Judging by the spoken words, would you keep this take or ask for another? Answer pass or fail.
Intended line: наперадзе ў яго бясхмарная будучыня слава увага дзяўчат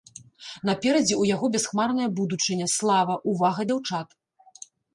pass